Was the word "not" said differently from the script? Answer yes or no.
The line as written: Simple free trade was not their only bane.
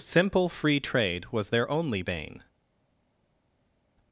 yes